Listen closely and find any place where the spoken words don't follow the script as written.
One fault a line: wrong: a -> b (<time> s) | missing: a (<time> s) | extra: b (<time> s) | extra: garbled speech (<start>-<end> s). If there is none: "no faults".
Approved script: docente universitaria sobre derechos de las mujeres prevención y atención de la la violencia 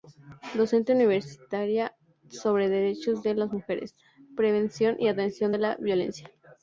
missing: la (5.8 s)